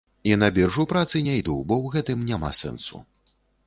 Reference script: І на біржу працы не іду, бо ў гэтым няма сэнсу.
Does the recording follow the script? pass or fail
pass